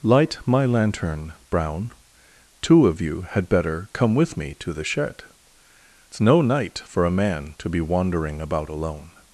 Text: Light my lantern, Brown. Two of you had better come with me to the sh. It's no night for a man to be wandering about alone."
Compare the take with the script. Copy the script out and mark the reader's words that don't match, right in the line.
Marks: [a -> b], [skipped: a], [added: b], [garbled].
Light my lantern, Brown. Two of you had better come with me to the [sh. -> shed] It's no night for a man to be wandering about alone."